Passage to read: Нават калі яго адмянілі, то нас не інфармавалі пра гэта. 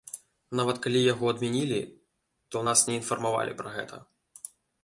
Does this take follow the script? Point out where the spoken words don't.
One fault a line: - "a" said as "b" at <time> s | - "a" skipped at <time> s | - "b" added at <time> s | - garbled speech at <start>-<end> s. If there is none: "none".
none